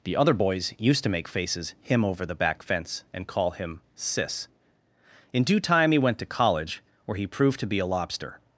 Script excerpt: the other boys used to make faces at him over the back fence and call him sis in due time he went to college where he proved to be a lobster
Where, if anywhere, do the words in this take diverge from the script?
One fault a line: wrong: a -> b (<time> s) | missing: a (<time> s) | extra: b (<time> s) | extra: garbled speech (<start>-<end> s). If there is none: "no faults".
missing: at (1.8 s)